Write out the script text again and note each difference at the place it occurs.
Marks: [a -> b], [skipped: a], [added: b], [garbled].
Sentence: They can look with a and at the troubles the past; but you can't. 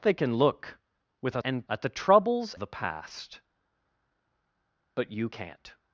They can look with a and at the troubles the past; but you can't.